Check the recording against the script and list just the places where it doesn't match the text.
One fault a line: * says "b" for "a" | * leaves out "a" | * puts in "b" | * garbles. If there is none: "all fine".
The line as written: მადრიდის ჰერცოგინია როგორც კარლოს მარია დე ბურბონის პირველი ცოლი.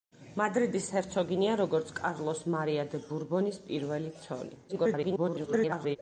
* garbles